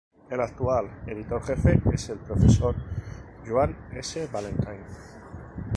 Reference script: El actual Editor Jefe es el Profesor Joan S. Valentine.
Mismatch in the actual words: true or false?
false